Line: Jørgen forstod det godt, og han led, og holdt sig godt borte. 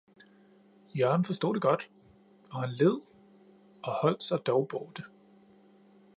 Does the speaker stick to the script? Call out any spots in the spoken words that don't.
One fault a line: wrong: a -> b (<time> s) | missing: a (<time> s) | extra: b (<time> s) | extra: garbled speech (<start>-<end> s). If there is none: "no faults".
wrong: godt -> dog (4.5 s)